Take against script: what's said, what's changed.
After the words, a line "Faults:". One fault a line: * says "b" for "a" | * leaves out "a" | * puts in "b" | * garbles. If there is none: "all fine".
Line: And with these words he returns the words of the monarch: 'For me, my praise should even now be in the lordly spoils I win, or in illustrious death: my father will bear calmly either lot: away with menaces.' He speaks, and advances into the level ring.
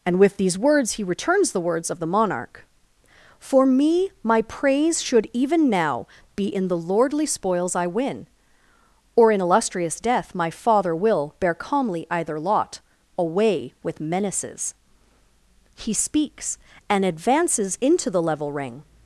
And with these words he returns the words of the monarch: 'For me, my praise should even now be in the lordly spoils I win, or in illustrious death: my father will bear calmly either lot: away with menaces.' He speaks, and advances into the level ring.
Faults:
all fine